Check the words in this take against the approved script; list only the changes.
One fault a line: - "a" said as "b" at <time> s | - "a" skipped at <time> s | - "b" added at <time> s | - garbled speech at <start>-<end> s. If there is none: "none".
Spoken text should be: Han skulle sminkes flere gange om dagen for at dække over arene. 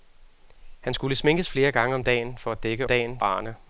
- "over" said as "dagen" at 2.9 s